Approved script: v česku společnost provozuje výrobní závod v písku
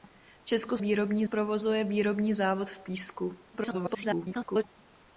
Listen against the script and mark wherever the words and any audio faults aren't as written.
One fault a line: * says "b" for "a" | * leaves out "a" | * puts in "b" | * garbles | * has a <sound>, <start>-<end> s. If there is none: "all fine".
* says "výrobní" for "společnost"
* garbles